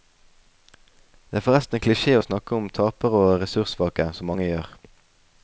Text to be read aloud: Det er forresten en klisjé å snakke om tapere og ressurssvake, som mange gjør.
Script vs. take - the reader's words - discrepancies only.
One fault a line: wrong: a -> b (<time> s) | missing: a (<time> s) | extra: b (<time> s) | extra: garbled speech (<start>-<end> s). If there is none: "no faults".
no faults